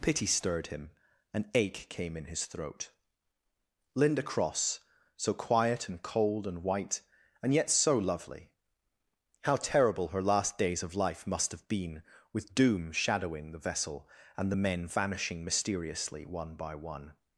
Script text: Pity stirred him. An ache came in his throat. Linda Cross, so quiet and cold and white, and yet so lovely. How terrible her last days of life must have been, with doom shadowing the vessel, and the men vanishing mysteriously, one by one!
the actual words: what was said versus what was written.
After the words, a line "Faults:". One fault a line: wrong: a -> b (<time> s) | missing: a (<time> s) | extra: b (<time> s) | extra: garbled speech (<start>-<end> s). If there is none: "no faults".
Pity stirred him. An ache came in his throat. Linda Cross, so quiet and cold and white, and yet so lovely. How terrible her last days of life must have been, with doom shadowing the vessel, and the men vanishing mysteriously, one by one!
Faults:
no faults